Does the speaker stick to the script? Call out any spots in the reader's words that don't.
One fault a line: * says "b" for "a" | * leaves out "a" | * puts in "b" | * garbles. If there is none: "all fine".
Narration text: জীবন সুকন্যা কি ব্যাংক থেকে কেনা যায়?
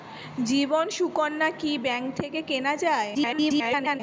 * garbles